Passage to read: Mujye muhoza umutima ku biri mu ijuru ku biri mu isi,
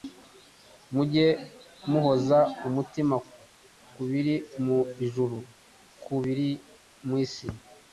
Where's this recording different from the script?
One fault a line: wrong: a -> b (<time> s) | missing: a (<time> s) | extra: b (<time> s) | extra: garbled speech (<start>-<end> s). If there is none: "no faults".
no faults